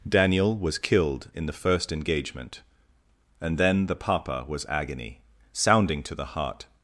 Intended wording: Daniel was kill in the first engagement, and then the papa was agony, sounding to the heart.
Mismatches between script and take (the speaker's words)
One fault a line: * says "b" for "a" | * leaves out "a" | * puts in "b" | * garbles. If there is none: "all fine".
* says "killed" for "kill"